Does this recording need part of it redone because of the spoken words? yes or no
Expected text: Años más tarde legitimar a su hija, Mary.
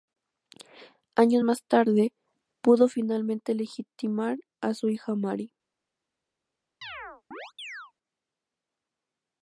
yes